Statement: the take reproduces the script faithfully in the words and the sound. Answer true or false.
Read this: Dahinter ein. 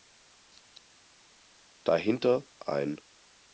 true